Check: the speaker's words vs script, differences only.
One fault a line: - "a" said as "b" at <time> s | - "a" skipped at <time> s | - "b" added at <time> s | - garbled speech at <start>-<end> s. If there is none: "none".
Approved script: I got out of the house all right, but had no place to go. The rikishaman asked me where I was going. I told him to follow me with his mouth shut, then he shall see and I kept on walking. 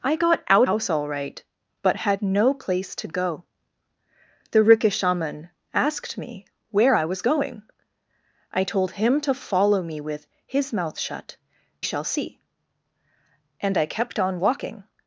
- "of the" skipped at 0.7 s
- "then he" skipped at 11.4 s